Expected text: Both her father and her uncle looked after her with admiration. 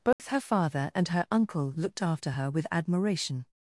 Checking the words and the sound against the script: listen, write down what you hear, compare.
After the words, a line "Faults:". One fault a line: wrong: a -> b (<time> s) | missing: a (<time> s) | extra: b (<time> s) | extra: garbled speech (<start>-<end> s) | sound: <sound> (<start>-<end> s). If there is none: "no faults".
Both her father and her uncle looked after her with admiration.
Faults:
sound: dropout (0.1-0.2 s)